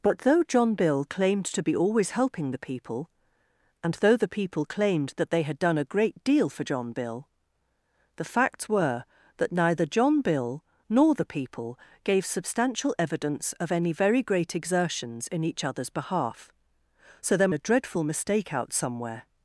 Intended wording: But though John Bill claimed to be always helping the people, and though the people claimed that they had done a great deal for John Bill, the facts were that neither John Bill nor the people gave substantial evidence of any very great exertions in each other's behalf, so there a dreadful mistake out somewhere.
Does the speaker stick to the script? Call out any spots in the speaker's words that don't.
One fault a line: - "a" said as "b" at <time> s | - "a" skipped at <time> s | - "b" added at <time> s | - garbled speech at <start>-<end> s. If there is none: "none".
none